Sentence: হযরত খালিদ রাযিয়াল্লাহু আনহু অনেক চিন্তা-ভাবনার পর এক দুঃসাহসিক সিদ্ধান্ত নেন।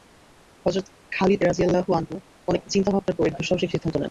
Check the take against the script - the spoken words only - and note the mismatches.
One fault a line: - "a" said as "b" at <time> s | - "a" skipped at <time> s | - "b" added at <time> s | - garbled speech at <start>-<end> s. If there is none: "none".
none